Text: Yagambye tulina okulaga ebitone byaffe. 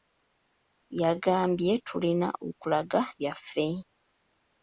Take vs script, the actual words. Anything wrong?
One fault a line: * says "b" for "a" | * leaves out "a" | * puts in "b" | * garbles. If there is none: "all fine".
* leaves out "ebitone"